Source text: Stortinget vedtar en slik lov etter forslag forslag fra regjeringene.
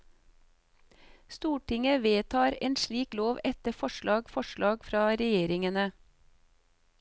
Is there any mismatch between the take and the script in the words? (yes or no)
no